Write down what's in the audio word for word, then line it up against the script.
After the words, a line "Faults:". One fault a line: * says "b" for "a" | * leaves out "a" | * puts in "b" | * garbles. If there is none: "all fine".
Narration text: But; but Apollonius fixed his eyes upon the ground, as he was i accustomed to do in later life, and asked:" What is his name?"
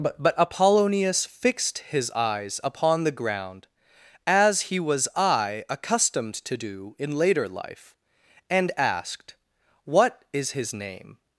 But; but Apollonius fixed his eyes upon the ground, as he was i accustomed to do in later life, and asked:" What is his name?"
Faults:
all fine